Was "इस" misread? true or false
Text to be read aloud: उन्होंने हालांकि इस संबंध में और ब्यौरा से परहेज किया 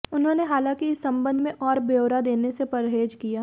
false